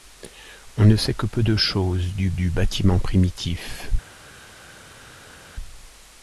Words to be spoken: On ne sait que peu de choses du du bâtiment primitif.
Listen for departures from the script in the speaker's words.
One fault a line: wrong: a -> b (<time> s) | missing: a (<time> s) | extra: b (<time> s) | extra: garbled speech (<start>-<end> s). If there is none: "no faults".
no faults